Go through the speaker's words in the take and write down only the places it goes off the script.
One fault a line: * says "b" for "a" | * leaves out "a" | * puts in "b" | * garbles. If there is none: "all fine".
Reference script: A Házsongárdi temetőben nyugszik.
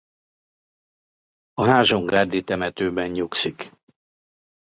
all fine